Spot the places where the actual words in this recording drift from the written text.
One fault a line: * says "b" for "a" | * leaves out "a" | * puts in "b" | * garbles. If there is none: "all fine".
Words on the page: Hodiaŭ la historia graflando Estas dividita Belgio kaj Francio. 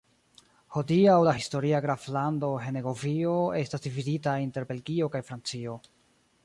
* puts in "Henegovio"
* puts in "inter"